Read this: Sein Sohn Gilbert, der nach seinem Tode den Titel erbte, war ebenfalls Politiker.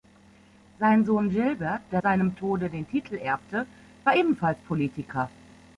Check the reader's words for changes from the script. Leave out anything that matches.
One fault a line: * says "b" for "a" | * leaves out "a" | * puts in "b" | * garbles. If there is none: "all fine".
* leaves out "nach"